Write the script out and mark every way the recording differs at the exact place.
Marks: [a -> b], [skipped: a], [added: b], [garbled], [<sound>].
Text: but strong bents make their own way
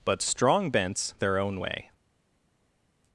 but strong bents [skipped: make] their own way